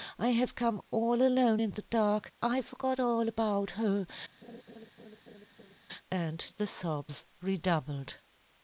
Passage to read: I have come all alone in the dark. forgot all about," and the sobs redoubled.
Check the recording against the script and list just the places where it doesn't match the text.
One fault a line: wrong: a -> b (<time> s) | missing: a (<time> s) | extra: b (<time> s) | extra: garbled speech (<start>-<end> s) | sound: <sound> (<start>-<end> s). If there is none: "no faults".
extra: I (2.4 s)
extra: her (3.7 s)
sound: laugh (4.4-5.8 s)